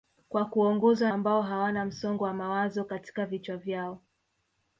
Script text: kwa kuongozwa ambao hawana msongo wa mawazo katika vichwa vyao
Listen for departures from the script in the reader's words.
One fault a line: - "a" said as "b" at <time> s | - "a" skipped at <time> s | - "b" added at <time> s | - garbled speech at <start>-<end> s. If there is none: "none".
none